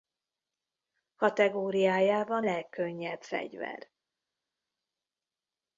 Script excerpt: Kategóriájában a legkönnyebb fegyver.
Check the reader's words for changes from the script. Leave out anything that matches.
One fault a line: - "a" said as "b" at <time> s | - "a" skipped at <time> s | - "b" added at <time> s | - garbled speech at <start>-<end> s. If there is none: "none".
- "a" skipped at 2.5 s